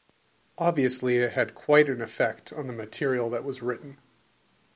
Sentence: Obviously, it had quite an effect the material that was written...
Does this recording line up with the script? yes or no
no